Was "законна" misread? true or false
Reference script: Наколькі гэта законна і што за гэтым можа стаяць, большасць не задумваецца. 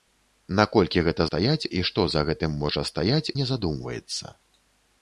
true